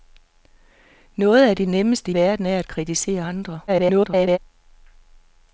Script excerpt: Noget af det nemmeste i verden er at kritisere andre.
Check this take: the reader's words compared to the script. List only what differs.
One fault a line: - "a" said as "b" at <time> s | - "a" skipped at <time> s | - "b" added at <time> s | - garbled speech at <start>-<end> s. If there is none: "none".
- "i" skipped at 2.1 s
- garbled speech at 3.7-4.4 s